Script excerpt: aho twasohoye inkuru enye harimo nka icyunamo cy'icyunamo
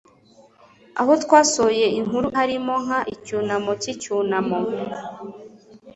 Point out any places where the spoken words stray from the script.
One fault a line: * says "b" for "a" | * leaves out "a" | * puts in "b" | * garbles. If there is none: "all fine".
* leaves out "enye"